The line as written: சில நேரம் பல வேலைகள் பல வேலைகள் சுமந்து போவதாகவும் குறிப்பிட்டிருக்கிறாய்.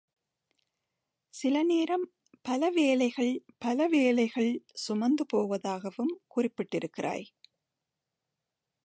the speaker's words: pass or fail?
pass